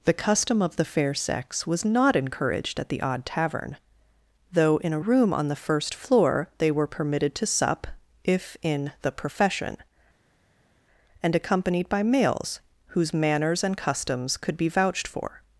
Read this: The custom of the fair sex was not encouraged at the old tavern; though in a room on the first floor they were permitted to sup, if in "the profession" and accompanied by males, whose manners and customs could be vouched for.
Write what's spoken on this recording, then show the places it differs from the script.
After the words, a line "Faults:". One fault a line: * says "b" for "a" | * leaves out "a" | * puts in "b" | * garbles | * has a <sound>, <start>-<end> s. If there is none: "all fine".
The custom of the fair sex was not encouraged at the odd tavern; though in a room on the first floor they were permitted to sup, if in "the profession" and accompanied by males, whose manners and customs could be vouched for.
Faults:
* says "odd" for "old"